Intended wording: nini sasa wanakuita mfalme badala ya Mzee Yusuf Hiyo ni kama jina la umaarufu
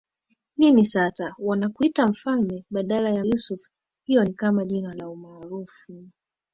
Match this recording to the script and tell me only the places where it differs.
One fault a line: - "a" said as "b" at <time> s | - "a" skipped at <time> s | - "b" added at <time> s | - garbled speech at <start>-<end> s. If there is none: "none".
- "Mzee" skipped at 3.2 s